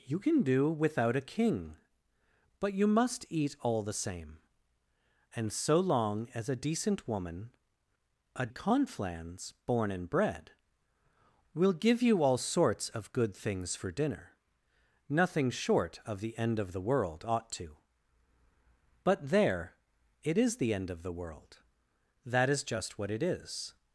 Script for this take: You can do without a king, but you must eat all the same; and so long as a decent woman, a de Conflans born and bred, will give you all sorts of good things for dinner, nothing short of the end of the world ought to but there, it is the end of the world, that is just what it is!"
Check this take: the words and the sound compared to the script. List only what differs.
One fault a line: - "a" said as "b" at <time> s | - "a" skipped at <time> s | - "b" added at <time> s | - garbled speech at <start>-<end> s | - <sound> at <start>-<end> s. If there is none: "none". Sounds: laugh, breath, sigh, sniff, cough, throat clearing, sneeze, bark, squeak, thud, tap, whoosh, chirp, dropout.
- "de" skipped at 8.5 s